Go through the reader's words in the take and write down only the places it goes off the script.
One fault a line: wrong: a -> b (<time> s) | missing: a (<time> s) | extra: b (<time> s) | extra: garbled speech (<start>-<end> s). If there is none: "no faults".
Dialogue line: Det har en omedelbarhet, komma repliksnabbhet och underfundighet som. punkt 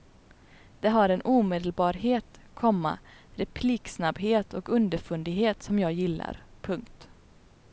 extra: jag gillar (5.8 s)